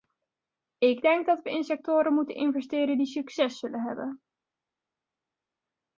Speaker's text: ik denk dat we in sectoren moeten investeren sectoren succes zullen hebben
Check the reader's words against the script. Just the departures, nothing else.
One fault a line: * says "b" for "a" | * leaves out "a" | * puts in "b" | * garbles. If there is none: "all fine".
* says "die" for "sectoren"